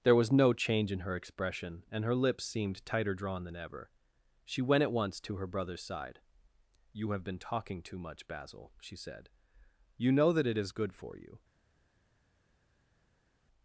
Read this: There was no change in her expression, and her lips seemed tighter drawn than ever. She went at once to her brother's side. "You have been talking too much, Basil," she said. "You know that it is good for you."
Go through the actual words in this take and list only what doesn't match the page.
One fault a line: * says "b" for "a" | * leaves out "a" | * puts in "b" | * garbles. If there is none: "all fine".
all fine